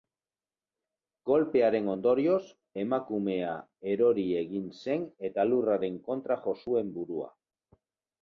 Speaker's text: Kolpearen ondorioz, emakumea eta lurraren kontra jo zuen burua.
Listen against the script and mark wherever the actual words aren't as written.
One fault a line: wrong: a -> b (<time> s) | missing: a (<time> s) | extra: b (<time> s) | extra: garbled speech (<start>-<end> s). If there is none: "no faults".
extra: erori egin zen (3.9 s)